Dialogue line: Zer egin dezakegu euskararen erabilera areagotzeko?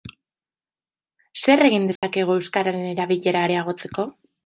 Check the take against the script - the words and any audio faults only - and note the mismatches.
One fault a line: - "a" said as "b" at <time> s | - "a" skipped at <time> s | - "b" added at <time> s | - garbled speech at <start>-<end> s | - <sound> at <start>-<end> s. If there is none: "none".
- dropout at 2.0-2.0 s